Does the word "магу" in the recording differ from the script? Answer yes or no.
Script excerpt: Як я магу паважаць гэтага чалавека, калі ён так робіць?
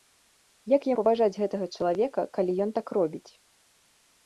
yes